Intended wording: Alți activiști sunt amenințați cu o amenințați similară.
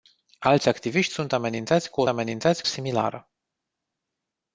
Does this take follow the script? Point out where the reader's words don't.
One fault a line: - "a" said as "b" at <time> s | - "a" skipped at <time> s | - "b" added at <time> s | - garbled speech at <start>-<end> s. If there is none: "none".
none